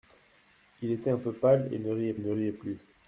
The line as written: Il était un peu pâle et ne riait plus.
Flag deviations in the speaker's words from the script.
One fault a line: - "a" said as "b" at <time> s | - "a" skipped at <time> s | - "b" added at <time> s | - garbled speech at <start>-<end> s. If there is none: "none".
- "ne riait" added at 2.2 s